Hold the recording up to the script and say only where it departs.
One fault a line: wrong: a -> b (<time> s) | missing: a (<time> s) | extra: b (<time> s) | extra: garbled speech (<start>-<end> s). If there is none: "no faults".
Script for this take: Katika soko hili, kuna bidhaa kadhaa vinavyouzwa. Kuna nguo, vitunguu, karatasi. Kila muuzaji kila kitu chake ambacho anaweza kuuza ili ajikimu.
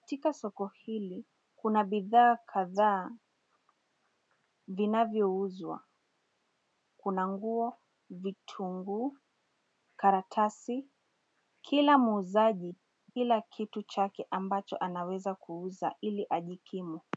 no faults